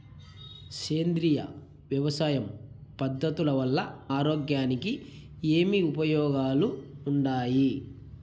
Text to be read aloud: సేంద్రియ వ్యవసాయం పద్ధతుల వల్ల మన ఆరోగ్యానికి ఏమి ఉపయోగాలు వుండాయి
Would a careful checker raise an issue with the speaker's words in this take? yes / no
yes